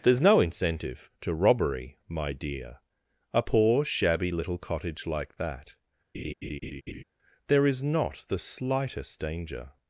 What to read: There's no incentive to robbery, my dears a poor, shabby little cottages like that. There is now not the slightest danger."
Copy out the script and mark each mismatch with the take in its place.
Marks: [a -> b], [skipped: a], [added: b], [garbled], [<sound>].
There's no incentive to robbery, my [dears -> dear] a poor, shabby little [cottages -> cottage] like that. [laugh] There is [skipped: now] not the slightest danger."